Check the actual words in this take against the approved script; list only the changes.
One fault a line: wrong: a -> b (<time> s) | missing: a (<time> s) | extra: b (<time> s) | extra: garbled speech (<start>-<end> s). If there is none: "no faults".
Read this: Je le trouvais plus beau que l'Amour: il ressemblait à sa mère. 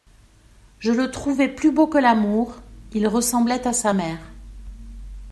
no faults